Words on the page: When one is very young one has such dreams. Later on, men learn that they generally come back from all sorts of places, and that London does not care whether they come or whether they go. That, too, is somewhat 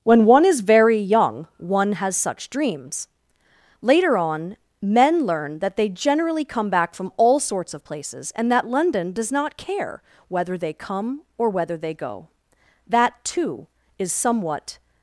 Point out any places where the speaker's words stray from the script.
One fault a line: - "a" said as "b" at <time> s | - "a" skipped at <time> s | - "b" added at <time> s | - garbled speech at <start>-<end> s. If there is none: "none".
none